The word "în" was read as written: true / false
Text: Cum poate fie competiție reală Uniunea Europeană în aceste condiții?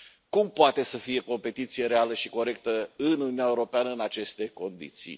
true